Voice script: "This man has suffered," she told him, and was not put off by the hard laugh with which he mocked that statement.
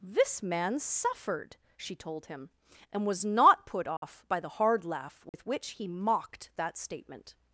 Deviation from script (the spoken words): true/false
true